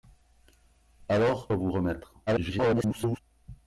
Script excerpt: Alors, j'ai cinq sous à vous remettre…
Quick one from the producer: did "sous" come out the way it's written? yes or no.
no